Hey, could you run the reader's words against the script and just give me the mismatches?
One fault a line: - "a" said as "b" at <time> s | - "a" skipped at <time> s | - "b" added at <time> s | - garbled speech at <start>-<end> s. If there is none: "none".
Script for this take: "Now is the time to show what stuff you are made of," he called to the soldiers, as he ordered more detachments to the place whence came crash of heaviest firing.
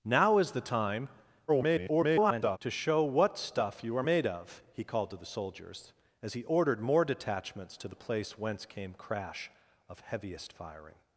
- garbled speech at 1.5-2.6 s